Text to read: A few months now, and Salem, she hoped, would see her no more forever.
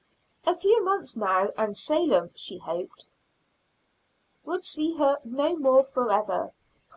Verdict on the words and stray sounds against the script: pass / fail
pass